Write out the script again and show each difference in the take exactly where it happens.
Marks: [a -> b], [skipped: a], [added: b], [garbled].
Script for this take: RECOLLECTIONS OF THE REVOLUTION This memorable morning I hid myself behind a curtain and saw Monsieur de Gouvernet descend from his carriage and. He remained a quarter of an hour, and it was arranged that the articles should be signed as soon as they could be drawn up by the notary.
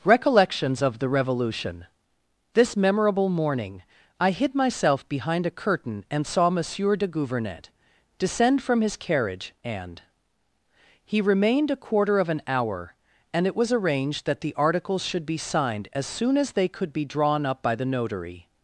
RECOLLECTIONS OF THE REVOLUTION This memorable morning I hid myself behind a curtain and saw Monsieur de Gouvernet descend from his carriage and. He remained a quarter of an hour, and it was arranged that the articles should be signed as soon as they could be drawn up by the notary.